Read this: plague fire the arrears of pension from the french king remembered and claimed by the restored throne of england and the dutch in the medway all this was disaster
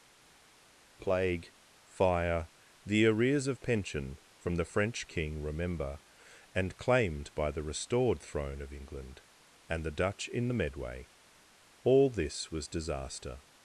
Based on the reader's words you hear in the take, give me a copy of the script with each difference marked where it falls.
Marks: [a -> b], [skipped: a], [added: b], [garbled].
plague fire the arrears of pension from the french king [remembered -> remember] and claimed by the restored throne of england and the dutch in the medway all this was disaster